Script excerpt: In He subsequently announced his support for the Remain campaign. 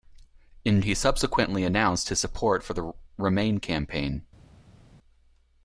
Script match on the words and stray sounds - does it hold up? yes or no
yes